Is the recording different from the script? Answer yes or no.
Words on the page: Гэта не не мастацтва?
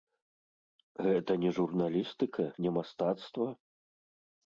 yes